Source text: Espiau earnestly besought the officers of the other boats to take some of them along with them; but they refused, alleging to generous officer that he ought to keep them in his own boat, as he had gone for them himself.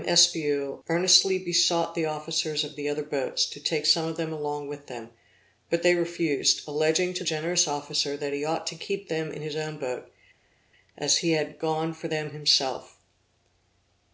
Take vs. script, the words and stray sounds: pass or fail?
pass